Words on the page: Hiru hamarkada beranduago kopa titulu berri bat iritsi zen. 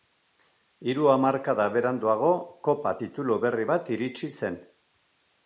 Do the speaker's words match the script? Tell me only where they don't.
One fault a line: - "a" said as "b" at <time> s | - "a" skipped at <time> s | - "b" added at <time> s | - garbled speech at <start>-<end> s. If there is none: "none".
none